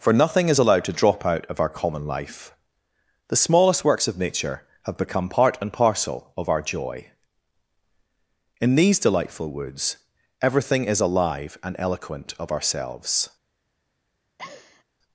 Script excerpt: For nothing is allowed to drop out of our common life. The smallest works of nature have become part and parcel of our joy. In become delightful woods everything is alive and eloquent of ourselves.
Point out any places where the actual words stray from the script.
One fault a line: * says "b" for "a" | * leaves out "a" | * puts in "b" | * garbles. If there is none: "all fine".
* says "these" for "become"